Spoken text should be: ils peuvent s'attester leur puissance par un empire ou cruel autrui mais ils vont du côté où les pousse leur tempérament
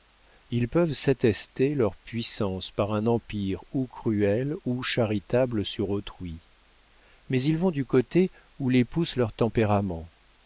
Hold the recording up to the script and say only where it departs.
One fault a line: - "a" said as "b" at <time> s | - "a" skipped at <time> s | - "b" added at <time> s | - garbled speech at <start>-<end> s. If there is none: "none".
- "ou charitable sur" added at 4.7 s